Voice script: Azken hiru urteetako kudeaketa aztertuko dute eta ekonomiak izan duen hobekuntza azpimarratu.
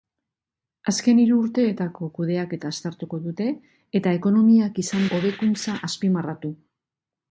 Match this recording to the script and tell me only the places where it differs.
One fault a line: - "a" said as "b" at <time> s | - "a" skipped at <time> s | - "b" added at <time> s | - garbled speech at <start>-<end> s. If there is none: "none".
- "duen" skipped at 5.1 s